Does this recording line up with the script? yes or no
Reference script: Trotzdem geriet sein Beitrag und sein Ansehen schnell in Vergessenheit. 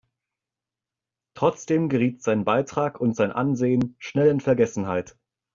yes